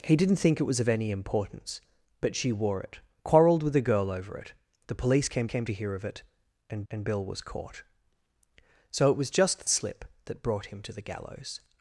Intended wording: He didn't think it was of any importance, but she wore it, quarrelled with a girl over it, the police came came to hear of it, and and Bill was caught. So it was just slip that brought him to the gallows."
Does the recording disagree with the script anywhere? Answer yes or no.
no